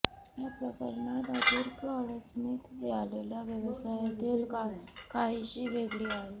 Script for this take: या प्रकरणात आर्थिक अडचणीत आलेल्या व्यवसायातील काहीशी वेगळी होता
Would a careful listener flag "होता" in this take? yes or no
yes